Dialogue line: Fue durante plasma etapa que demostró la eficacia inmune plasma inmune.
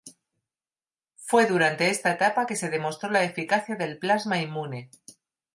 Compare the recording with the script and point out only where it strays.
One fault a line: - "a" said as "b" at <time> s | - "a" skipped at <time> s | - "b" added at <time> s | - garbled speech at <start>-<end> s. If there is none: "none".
- "plasma" said as "esta" at 1.9 s
- "se" added at 2.6 s
- "inmune" said as "del" at 3.8 s